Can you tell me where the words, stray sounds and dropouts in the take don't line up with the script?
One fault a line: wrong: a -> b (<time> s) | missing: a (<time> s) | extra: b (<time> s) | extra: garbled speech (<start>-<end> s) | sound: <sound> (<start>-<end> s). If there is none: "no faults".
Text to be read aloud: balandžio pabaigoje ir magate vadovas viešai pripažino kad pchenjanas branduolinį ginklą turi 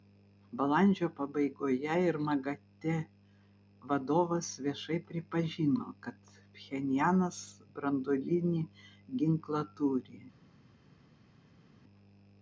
no faults